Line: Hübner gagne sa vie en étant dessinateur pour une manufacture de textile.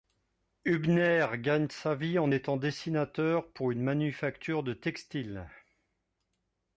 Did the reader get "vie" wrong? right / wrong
right